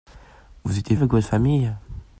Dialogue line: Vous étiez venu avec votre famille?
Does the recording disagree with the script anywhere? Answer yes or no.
yes